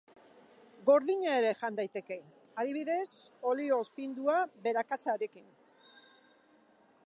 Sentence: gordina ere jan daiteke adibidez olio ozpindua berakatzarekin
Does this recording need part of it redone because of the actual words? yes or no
no